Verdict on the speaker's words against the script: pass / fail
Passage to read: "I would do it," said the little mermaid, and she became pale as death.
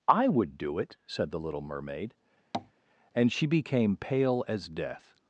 pass